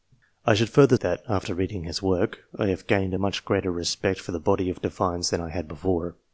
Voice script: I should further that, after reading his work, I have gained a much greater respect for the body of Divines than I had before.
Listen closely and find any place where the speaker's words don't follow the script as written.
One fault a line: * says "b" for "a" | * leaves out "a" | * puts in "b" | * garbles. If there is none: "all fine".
all fine